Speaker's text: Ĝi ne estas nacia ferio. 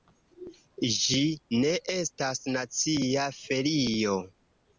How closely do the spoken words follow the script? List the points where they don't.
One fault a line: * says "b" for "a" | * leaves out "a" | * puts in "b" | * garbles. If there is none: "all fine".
all fine